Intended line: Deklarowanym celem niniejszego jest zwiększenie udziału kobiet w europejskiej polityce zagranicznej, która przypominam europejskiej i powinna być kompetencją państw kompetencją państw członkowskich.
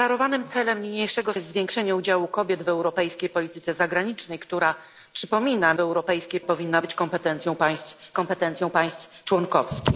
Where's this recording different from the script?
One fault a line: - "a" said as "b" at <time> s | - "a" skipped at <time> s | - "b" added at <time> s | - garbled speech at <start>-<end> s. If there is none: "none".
none